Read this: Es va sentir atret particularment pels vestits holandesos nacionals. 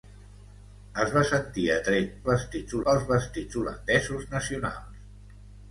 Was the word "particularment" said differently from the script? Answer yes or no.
yes